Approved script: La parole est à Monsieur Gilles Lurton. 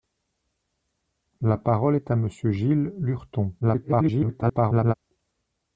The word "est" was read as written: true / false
true